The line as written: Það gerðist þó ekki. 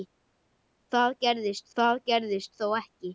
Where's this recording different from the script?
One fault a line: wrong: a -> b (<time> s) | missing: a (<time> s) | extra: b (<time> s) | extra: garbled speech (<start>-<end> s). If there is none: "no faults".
extra: það gerðist (1.8 s)